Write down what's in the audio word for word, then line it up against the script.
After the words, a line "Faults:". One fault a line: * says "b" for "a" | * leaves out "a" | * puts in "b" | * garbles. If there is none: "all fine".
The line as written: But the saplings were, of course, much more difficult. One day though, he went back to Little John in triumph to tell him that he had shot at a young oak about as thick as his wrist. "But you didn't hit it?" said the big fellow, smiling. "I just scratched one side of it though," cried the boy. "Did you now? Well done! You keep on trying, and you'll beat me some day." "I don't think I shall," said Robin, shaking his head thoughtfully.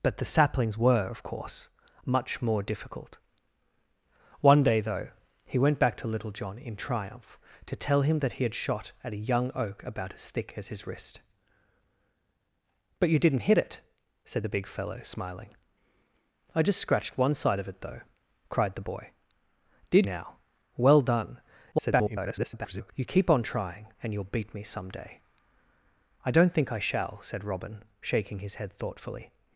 But the saplings were, of course, much more difficult. One day though, he went back to Little John in triumph to tell him that he had shot at a young oak about as thick as his wrist. "But you didn't hit it?" said the big fellow, smiling. "I just scratched one side of it though," cried the boy. "Did now? Well done! [garbled] You keep on trying, and you'll beat me some day." "I don't think I shall," said Robin, shaking his head thoughtfully.
Faults:
* leaves out "you"
* garbles